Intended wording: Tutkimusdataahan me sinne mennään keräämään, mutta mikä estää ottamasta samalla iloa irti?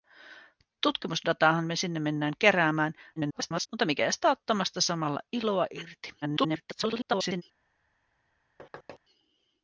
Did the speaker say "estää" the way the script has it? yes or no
yes